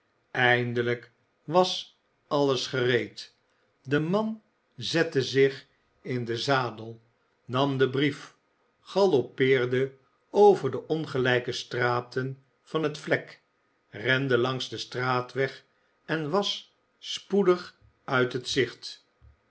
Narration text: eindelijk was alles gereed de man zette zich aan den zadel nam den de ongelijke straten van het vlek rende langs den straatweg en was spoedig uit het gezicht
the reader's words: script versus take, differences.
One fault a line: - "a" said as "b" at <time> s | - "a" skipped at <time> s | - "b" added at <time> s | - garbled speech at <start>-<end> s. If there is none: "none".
- "aan" said as "in" at 6.0 s
- "brief galoppeerde over" added at 7.9 s